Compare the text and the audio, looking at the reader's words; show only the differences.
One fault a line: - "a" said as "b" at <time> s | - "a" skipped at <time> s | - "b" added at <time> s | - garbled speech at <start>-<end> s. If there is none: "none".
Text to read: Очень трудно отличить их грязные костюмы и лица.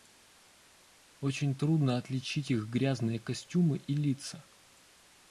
none